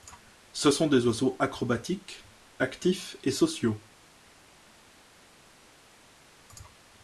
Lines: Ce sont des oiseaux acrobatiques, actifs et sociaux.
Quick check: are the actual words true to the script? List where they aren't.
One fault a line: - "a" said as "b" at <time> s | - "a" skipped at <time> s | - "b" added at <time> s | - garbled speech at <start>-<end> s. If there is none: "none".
none